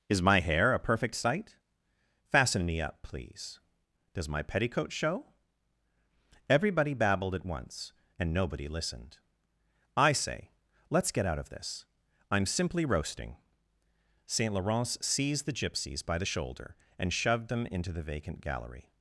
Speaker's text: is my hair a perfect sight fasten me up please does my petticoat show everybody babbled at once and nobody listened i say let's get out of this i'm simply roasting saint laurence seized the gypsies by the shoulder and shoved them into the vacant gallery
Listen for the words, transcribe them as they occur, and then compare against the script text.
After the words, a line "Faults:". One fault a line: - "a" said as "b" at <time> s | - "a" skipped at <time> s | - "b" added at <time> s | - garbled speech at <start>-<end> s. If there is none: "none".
is my hair a perfect sight fasten me up please does my petticoat show everybody babbled at once and nobody listened i say let's get out of this i'm simply roasting saint laurence seized the gypsies by the shoulder and shoved them into the vacant gallery
Faults:
none